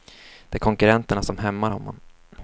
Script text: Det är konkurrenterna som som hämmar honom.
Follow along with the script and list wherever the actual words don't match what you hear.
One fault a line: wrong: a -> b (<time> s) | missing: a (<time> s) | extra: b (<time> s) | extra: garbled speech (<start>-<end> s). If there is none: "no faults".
missing: som (1.4 s)